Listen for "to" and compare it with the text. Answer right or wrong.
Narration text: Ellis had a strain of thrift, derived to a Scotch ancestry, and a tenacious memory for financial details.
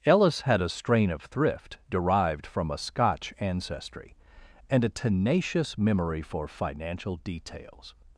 wrong